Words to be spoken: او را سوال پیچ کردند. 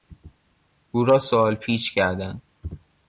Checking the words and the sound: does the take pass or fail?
pass